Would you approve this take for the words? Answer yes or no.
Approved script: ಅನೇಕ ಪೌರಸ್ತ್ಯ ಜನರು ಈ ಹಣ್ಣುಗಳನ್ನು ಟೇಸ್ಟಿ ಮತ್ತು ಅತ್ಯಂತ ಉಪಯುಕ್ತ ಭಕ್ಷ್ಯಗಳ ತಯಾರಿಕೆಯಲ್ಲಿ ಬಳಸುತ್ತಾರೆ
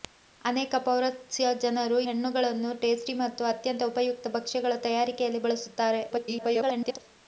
no